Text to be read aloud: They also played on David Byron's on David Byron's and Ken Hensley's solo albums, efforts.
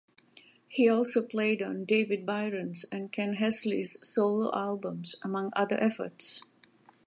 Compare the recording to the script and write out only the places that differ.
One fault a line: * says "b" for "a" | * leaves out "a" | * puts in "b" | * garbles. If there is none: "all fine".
* says "He" for "They"
* leaves out "on David Byron's"
* puts in "among other"